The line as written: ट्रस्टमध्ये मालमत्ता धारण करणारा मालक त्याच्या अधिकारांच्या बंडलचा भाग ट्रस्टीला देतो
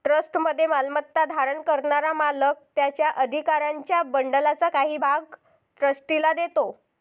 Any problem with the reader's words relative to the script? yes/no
yes